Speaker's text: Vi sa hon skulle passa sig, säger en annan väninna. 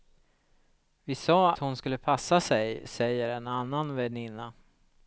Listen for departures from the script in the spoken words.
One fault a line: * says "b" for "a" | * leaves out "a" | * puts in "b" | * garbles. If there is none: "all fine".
all fine